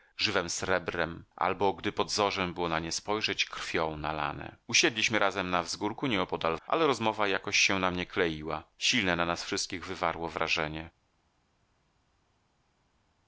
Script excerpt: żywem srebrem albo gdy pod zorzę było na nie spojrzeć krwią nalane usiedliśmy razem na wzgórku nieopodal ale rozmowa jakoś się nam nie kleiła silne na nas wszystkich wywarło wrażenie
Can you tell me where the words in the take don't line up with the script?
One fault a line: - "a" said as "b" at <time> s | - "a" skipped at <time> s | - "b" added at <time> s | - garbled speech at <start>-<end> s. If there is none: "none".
none